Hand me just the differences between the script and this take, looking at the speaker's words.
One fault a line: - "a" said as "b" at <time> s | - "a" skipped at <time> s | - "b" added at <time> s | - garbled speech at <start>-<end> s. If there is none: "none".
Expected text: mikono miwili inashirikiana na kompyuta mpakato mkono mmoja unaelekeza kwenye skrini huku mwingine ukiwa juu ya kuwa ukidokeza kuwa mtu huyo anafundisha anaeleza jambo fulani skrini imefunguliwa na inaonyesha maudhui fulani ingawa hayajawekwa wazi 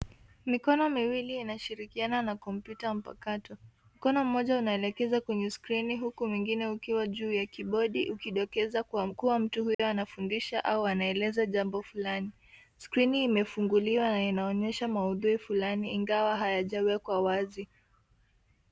- "kuwa" said as "kibodi" at 7.5 s
- "au" added at 10.7 s